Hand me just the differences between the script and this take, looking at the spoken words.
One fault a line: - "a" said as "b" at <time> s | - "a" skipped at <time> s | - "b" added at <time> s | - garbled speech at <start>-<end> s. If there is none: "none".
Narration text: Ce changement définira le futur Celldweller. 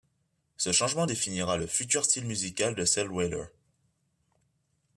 - "style musical de" added at 2.0 s